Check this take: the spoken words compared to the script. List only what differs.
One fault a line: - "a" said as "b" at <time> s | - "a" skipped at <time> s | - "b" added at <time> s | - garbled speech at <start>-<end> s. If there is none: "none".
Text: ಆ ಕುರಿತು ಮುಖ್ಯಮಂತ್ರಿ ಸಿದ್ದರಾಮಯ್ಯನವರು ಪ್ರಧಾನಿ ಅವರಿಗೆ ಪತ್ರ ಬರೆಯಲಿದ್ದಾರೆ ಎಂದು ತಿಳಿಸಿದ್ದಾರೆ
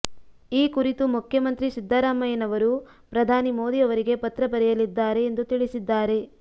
- "ಆ" said as "ಈ" at 0.5 s
- "ಮೋದಿ" added at 3.6 s